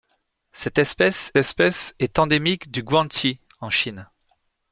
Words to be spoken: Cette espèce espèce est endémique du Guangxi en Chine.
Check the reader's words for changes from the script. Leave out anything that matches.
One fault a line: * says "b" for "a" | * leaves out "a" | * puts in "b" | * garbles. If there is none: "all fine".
all fine